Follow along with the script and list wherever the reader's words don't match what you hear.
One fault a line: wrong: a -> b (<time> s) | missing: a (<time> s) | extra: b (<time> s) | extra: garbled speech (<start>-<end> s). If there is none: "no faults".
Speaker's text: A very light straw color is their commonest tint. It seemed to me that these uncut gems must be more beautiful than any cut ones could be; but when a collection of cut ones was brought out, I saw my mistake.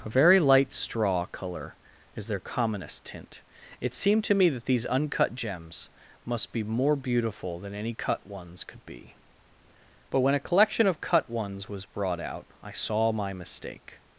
no faults